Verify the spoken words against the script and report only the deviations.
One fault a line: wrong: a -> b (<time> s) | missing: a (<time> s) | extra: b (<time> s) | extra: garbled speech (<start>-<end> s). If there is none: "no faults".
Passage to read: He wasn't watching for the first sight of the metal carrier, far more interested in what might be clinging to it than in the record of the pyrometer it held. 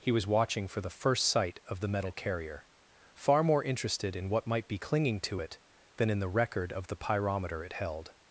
wrong: wasn't -> was (0.1 s)